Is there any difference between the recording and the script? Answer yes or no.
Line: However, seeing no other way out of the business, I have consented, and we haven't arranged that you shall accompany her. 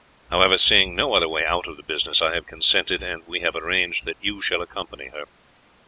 yes